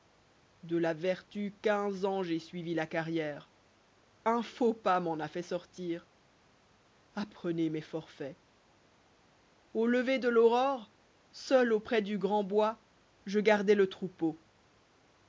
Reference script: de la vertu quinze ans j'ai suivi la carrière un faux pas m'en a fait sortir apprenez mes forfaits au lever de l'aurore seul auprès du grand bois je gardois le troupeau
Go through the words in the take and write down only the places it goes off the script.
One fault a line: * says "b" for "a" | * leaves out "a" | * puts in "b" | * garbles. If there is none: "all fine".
all fine